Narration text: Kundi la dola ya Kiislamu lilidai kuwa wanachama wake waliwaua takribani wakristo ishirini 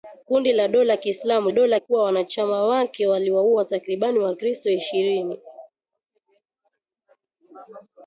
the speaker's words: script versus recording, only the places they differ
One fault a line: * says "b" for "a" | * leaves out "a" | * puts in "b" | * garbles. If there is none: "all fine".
* says "dola" for "lilidai"